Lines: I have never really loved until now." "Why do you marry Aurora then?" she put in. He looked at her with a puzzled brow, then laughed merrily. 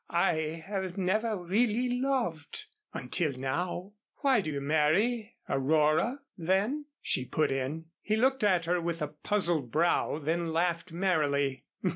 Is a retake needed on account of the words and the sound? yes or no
no